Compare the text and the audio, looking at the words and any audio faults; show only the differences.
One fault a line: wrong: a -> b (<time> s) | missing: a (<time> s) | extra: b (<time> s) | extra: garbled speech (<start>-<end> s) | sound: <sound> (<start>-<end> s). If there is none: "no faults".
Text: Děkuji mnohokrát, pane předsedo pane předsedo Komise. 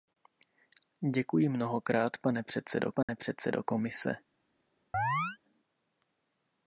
sound: dropout (3.0-3.1 s)
sound: chirp (4.9-5.4 s)